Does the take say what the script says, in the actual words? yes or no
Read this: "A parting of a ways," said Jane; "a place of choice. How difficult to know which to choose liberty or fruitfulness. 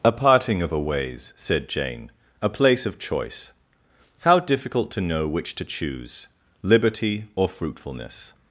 yes